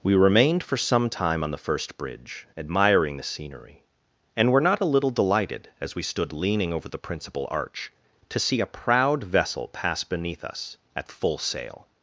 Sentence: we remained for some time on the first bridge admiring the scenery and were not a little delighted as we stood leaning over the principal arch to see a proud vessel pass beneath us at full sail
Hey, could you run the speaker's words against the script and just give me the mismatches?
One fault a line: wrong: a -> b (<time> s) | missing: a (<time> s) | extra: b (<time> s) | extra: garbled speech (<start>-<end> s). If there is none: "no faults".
no faults